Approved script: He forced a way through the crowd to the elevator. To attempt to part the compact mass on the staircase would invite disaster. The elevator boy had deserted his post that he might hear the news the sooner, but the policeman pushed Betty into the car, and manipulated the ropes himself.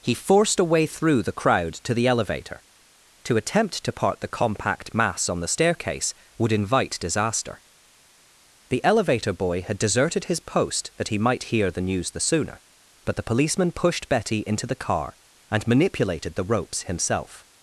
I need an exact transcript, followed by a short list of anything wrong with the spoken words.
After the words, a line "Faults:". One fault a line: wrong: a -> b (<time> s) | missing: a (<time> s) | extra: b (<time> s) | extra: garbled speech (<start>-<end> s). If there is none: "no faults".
He forced a way through the crowd to the elevator. To attempt to part the compact mass on the staircase would invite disaster. The elevator boy had deserted his post that he might hear the news the sooner, but the policeman pushed Betty into the car, and manipulated the ropes himself.
Faults:
no faults